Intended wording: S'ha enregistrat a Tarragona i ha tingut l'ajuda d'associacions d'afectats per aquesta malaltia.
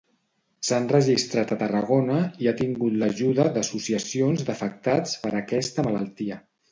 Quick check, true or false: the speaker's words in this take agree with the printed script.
true